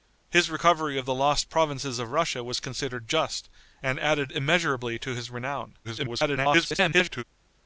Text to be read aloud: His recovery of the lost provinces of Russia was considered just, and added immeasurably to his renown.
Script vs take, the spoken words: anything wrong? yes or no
yes